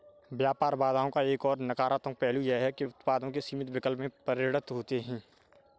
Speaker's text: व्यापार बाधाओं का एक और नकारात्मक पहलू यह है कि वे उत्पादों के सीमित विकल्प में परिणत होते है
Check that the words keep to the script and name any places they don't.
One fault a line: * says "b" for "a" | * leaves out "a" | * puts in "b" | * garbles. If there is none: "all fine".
* leaves out "वे"